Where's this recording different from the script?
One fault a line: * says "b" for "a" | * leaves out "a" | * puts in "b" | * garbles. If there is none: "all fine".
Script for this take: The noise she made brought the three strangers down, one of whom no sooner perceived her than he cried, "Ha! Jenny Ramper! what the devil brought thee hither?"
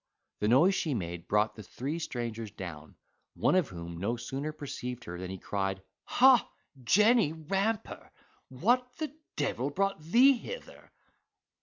all fine